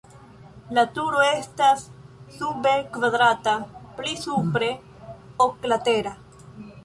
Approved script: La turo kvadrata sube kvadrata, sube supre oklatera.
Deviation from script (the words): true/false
true